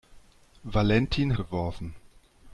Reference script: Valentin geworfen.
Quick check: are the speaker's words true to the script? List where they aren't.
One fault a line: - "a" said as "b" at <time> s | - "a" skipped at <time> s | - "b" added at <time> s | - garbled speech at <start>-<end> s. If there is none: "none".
none